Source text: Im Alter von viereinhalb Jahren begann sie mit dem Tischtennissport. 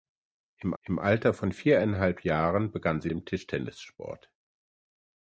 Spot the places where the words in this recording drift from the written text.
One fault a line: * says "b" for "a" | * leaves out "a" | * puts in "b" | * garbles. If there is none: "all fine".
* puts in "im"
* leaves out "mit"